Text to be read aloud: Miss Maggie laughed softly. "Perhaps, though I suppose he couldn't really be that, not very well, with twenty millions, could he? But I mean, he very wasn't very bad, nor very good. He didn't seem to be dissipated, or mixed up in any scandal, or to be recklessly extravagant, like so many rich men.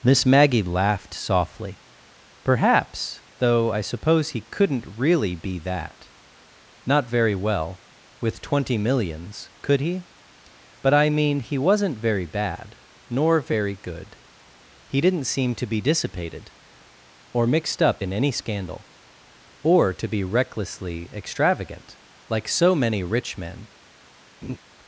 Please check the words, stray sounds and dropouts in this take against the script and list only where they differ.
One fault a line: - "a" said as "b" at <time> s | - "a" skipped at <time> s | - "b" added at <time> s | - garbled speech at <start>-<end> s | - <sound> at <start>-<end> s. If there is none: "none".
- "very" skipped at 11.6 s
- laugh at 24.4-24.6 s